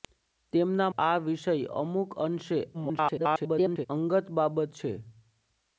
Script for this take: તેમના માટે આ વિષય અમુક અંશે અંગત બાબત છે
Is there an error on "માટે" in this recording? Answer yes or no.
yes